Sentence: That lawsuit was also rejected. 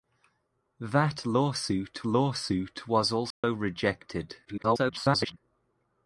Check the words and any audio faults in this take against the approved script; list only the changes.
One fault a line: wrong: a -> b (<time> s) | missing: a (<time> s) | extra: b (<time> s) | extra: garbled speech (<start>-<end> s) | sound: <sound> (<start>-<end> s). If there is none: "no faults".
extra: lawsuit (2.1 s)
sound: dropout (3.3-3.4 s)
extra: garbled speech (4.5-5.4 s)